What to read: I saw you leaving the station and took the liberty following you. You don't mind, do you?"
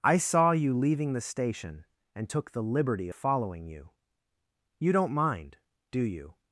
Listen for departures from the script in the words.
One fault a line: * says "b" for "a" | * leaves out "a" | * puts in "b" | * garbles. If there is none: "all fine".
all fine